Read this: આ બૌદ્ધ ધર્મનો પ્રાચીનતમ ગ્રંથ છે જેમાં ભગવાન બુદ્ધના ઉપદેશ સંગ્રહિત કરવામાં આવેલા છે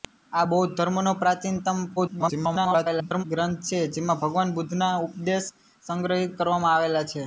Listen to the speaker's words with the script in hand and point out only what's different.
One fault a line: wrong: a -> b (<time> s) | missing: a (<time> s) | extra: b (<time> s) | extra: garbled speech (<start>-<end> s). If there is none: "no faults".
extra: garbled speech (2.0-3.2 s)